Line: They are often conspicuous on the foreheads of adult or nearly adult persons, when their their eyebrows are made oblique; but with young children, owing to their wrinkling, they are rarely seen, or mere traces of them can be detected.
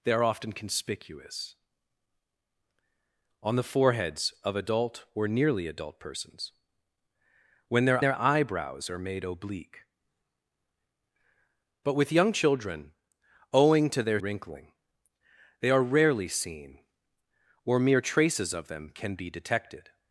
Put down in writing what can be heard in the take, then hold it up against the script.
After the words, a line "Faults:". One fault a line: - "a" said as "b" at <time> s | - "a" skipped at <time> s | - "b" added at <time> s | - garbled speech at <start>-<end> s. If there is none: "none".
They are often conspicuous on the foreheads of adult or nearly adult persons, when their their eyebrows are made oblique; but with young children, owing to their wrinkling, they are rarely seen, or mere traces of them can be detected.
Faults:
none